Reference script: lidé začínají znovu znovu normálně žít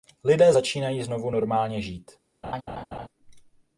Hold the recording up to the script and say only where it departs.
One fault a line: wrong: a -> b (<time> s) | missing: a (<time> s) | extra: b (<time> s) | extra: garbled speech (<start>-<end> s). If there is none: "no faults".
missing: znovu (1.3 s)